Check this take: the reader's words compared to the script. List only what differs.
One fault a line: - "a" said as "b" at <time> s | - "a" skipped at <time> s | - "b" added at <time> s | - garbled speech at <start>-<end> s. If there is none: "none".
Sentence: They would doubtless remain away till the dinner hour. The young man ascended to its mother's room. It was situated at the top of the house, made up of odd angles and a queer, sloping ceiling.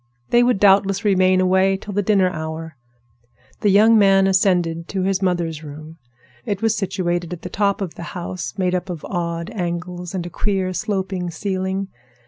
- "its" said as "his" at 5.0 s